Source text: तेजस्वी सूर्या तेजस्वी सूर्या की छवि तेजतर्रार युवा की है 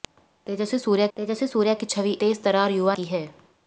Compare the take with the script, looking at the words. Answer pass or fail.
pass